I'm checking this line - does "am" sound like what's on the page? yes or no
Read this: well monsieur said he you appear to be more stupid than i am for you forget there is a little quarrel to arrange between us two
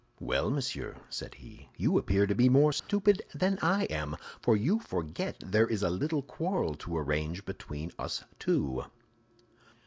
yes